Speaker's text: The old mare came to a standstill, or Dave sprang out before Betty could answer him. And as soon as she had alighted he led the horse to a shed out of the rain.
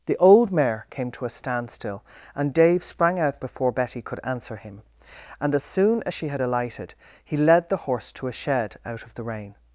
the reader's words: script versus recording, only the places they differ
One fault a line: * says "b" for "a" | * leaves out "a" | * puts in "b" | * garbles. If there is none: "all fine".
* says "and" for "or"